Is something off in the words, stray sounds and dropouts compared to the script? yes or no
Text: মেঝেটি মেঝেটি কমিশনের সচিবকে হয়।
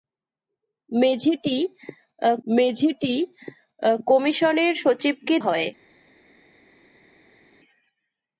no